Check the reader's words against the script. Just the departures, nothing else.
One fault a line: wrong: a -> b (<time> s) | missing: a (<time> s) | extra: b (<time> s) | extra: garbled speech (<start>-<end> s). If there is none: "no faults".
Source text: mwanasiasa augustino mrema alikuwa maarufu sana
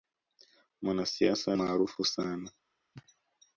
missing: augustino mrema alikuwa (1.5 s)